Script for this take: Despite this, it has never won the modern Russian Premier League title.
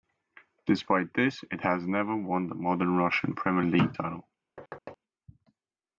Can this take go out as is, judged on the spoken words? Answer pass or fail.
pass